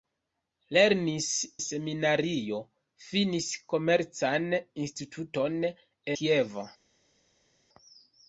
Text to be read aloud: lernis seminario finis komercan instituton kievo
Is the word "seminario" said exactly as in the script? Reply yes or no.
yes